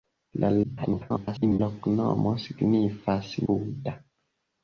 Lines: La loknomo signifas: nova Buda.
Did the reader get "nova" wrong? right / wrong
wrong